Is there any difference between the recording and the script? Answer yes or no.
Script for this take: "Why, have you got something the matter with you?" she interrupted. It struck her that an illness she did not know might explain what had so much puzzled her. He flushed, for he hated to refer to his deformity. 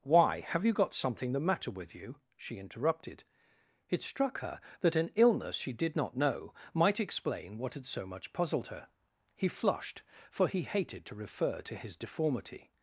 no